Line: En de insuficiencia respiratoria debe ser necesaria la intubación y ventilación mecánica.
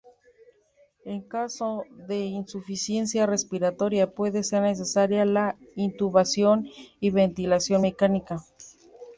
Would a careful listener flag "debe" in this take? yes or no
yes